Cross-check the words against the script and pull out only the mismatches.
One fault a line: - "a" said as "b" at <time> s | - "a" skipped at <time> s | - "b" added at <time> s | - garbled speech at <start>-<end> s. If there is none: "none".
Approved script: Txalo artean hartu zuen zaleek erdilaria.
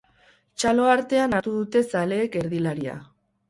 - "zuen" said as "dute" at 1.6 s